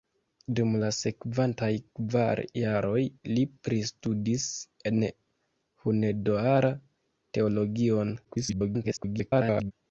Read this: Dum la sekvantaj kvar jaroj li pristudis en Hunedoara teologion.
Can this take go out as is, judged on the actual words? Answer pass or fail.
fail